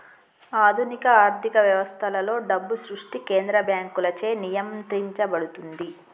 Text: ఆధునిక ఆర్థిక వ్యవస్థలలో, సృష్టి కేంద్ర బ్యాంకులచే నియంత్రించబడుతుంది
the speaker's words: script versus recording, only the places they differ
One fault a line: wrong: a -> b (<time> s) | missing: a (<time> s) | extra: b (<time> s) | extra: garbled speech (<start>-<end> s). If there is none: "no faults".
extra: డబ్బు (2.5 s)